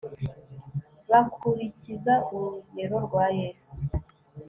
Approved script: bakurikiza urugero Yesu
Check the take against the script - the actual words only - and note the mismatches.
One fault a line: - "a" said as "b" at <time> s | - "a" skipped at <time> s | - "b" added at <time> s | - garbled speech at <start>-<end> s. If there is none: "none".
- "rwa" added at 3.1 s